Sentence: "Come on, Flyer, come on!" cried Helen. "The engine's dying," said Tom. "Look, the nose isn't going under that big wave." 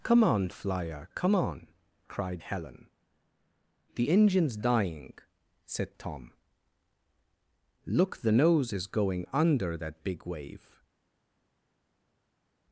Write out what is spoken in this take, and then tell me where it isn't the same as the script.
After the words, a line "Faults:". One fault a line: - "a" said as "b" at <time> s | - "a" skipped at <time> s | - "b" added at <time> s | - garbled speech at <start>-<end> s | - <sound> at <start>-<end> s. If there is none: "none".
"Come on, Flyer, come on!" cried Helen. "The engine's dying," said Tom. "Look, the nose is going under that big wave."
Faults:
- "isn't" said as "is" at 8.7 s